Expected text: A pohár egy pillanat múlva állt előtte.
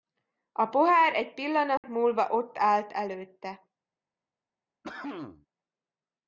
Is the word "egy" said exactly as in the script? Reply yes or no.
yes